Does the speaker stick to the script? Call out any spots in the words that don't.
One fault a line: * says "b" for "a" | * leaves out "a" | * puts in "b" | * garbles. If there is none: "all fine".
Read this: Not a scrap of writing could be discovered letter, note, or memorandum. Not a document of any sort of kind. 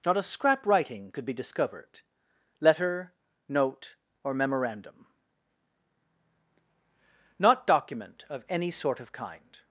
* leaves out "of"
* leaves out "a"